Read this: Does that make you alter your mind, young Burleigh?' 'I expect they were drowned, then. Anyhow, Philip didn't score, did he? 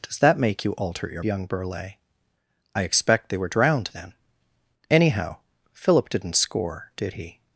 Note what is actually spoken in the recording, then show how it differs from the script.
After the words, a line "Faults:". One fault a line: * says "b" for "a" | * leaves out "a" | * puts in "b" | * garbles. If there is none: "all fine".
Does that make you alter your young Burleigh?' 'I expect they were drowned, then. Anyhow, Philip didn't score, did he?
Faults:
* leaves out "mind"